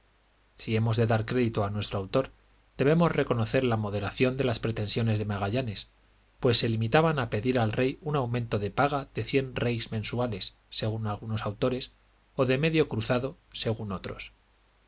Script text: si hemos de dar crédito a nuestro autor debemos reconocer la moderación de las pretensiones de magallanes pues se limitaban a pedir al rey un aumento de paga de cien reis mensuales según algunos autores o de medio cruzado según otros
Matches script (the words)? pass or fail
pass